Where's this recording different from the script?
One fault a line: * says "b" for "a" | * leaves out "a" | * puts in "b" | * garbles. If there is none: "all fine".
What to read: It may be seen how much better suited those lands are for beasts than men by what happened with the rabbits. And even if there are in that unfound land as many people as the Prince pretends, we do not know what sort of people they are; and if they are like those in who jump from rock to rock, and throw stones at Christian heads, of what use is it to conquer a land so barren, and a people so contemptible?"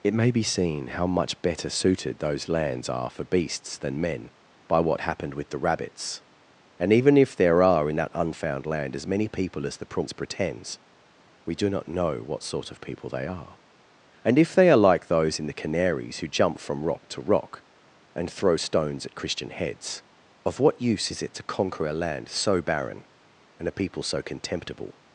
* puts in "the Canaries"